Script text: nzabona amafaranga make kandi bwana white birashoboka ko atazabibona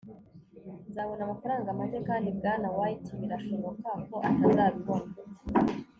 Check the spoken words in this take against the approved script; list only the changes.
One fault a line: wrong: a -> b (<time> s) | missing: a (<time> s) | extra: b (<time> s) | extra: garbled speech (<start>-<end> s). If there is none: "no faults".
no faults